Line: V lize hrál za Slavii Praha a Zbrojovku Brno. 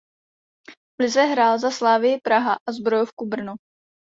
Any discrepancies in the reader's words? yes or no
no